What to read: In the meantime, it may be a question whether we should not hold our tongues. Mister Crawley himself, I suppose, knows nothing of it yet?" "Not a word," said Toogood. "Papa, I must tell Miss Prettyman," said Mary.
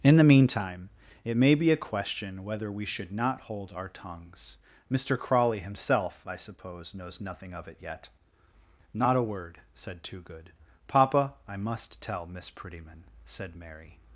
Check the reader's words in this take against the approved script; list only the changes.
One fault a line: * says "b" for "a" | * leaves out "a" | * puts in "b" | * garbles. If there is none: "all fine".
all fine